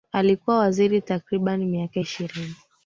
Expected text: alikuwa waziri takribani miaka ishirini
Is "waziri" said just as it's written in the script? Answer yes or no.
yes